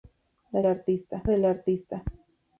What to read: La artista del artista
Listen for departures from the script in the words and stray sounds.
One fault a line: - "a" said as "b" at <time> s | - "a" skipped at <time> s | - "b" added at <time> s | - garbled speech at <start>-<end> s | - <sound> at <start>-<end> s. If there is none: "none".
none